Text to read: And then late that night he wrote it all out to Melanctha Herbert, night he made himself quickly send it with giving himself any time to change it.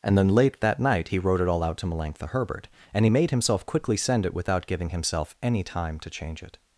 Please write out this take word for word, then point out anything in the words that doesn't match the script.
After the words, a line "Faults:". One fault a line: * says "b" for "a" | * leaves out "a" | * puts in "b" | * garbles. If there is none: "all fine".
And then late that night he wrote it all out to Melanctha Herbert, and he made himself quickly send it without giving himself any time to change it.
Faults:
* says "and" for "night"
* says "without" for "with"